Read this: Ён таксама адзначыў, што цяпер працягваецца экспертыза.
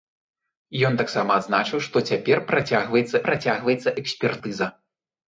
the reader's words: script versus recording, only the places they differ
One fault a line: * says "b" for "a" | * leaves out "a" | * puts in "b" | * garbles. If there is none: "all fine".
* puts in "працягваецца"